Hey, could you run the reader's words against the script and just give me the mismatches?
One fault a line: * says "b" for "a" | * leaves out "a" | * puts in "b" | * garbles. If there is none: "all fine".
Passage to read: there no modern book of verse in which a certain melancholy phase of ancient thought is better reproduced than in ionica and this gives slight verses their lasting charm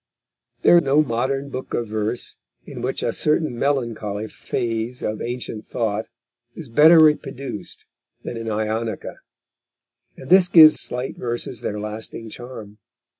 all fine